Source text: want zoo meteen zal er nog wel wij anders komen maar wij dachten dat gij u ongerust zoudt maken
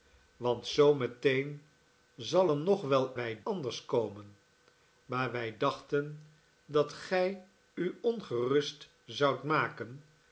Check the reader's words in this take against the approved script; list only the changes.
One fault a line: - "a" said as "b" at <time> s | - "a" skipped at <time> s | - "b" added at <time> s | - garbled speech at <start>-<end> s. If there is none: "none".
none